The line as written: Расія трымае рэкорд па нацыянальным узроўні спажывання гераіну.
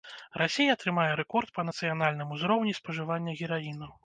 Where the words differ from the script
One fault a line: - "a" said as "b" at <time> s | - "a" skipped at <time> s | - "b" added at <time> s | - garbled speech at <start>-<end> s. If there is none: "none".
none